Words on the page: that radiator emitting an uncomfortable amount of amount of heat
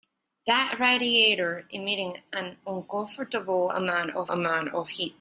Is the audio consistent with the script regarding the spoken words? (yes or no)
yes